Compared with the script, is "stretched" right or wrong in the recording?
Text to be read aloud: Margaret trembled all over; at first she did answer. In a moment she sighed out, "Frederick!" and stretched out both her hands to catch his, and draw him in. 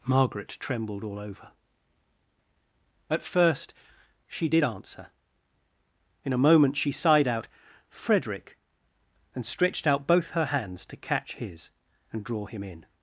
right